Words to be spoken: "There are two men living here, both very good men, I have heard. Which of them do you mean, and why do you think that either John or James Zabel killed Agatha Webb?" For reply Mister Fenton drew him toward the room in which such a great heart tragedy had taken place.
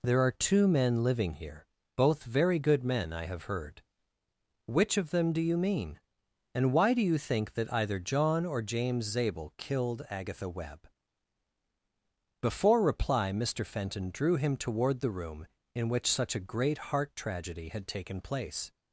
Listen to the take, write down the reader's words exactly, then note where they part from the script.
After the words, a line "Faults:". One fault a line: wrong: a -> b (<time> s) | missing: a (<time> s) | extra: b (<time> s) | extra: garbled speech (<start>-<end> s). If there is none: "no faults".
"There are two men living here, both very good men, I have heard. Which of them do you mean, and why do you think that either John or James Zabel killed Agatha Webb?" Before reply Mister Fenton drew him toward the room in which such a great heart tragedy had taken place.
Faults:
wrong: For -> Before (12.4 s)